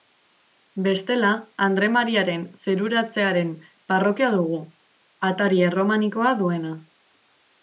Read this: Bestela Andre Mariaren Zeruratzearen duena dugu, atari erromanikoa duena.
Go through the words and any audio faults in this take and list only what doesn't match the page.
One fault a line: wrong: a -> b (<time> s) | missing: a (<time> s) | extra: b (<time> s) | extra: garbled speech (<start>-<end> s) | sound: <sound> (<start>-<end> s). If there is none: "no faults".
wrong: duena -> parrokia (3.9 s)